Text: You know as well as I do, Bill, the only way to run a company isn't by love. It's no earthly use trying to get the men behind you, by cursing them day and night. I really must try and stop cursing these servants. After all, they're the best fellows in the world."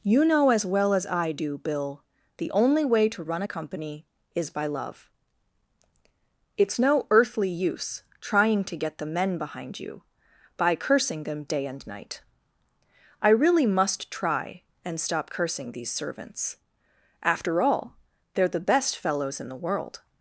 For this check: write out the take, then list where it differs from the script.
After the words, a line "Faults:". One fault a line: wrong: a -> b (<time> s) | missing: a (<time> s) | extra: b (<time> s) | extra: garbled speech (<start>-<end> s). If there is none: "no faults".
You know as well as I do, Bill, the only way to run a company is by love. It's no earthly use trying to get the men behind you, by cursing them day and night. I really must try and stop cursing these servants. After all, they're the best fellows in the world."
Faults:
wrong: isn't -> is (4.3 s)